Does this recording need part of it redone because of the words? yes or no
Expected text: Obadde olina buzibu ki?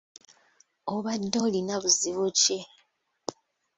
no